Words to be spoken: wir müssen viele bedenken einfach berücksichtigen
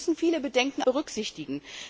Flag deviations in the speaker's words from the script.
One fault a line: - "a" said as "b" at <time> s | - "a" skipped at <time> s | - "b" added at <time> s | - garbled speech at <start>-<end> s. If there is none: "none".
- "einfach" skipped at 0.8 s